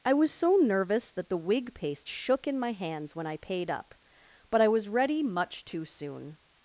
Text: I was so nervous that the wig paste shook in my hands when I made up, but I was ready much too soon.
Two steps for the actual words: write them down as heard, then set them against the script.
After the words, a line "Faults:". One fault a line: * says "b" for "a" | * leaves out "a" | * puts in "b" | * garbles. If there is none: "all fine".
I was so nervous that the wig paste shook in my hands when I paid up, but I was ready much too soon.
Faults:
* says "paid" for "made"